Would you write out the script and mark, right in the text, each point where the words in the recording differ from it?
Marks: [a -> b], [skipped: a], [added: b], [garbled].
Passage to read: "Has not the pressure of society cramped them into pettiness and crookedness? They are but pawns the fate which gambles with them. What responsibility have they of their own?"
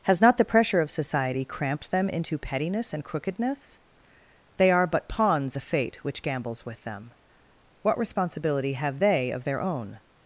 "Has not the pressure of society cramped them into pettiness and crookedness? They are but pawns the fate which gambles with them. What responsibility have they of their own?"